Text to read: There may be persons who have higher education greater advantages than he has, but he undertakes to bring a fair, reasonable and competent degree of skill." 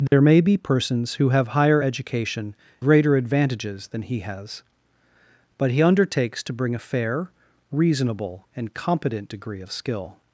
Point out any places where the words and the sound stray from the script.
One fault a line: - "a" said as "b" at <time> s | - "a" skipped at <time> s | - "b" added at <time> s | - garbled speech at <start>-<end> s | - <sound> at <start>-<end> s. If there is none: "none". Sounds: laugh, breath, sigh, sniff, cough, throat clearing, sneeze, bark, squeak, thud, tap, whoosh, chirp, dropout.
- dropout at 0.1-0.1 s